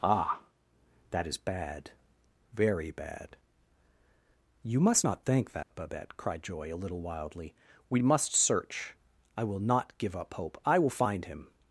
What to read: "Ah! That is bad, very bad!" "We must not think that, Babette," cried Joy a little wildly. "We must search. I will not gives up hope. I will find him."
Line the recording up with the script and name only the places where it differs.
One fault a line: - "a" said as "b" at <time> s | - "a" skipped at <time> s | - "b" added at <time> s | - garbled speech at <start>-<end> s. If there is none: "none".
- "We" said as "You" at 4.6 s
- "gives" said as "give" at 10.0 s